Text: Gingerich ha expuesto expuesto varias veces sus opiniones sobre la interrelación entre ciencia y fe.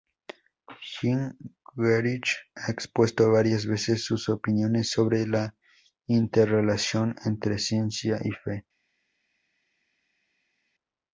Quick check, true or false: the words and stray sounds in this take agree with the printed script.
false